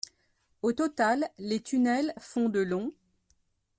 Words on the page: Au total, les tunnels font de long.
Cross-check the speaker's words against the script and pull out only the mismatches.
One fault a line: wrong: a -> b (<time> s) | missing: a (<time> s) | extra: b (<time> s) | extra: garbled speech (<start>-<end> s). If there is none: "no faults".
no faults